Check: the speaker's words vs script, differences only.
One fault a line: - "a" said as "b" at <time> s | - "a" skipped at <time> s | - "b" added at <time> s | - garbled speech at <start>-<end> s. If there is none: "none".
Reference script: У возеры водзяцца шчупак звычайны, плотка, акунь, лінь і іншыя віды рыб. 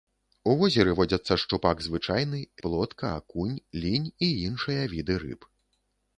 none